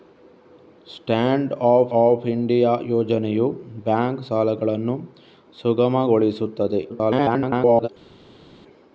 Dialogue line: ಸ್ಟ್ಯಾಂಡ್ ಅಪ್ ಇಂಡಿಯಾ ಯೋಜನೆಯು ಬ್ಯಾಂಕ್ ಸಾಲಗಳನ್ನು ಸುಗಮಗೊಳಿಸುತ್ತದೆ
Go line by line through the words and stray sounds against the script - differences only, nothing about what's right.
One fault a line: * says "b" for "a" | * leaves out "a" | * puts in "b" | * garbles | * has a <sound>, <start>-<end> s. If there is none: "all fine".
* puts in "ಅಪ್"
* garbles